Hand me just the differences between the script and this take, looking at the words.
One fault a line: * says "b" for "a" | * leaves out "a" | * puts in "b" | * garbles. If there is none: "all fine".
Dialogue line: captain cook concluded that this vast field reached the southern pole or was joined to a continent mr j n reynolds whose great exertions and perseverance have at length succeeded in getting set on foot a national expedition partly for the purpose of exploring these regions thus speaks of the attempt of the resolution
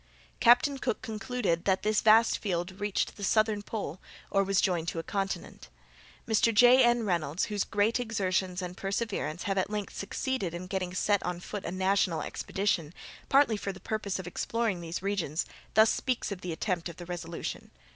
all fine